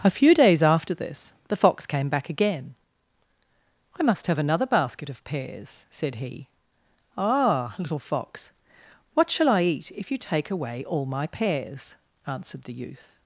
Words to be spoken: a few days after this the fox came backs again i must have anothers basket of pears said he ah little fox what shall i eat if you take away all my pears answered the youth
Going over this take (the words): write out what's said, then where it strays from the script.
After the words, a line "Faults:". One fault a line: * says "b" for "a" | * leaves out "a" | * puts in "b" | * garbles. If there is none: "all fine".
a few days after this the fox came back again i must have another basket of pears said he ah little fox what shall i eat if you take away all my pears answered the youth
Faults:
* says "back" for "backs"
* says "another" for "anothers"